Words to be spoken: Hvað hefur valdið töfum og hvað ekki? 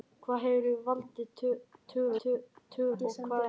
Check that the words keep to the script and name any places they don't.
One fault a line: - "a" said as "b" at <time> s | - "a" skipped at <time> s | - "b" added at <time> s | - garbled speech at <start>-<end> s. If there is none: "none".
- "hvað" said as "töfum" at 2.2 s